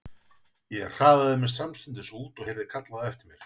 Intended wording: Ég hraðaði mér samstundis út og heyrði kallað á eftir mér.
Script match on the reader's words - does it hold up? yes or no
yes